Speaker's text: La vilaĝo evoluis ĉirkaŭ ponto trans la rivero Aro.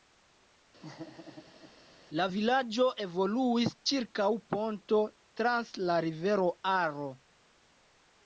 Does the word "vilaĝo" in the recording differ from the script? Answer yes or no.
no